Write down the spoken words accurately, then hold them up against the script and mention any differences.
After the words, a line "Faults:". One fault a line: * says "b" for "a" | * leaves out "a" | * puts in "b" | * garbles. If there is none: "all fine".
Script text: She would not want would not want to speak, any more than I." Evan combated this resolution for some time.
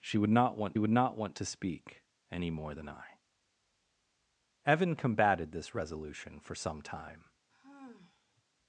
She would not want would not want to speak, any more than I." Evan combated this resolution for some time.
Faults:
all fine